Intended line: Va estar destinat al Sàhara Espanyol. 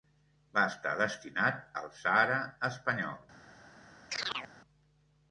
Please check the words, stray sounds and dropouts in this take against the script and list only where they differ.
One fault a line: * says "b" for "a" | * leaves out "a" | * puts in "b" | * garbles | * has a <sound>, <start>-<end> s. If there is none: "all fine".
* has a chirp, 4.1-4.5 s